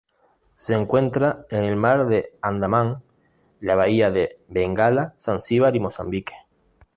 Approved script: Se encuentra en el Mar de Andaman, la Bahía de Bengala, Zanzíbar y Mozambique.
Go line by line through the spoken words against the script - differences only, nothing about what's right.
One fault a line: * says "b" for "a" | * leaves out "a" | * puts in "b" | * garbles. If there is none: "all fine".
all fine